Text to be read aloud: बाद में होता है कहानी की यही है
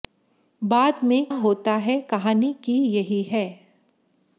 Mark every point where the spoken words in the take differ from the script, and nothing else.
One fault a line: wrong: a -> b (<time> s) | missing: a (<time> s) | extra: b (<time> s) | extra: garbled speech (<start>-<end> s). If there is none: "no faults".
no faults